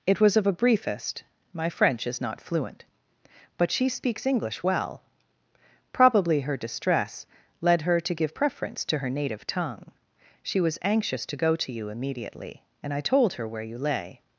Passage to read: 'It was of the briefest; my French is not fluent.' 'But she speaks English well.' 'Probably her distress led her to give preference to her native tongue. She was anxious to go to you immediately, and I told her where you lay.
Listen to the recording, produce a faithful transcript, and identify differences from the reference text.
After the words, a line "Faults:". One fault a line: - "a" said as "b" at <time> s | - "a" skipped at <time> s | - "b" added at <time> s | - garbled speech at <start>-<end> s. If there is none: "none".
'It was of a briefest; my French is not fluent.' 'But she speaks English well.' 'Probably her distress led her to give preference to her native tongue. She was anxious to go to you immediately, and I told her where you lay.
Faults:
- "the" said as "a" at 0.5 s